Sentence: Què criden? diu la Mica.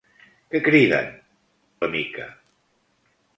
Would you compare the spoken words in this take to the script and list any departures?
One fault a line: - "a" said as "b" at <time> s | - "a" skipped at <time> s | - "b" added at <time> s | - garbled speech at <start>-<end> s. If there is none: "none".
- "diu" skipped at 1.1 s